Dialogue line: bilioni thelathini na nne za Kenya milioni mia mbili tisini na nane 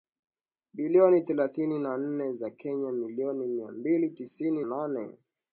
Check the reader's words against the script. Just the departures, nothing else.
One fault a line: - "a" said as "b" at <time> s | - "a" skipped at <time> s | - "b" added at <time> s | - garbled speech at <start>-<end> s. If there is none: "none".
- "na" skipped at 4.6 s